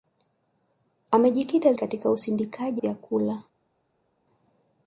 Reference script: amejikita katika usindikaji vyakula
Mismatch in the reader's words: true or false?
false